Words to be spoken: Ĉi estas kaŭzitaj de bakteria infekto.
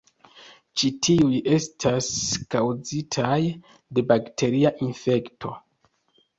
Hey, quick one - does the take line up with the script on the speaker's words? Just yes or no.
no